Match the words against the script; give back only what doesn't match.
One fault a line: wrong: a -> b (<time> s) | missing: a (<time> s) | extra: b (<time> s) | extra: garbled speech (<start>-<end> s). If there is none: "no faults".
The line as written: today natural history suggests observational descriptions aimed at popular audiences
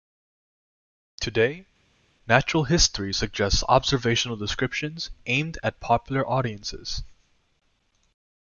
no faults